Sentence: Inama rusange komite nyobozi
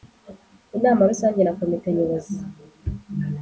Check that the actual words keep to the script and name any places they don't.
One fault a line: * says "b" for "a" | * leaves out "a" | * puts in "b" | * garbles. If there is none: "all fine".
* puts in "na"